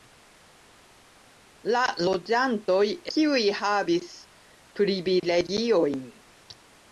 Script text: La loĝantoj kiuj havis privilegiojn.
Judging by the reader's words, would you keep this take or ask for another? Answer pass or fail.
pass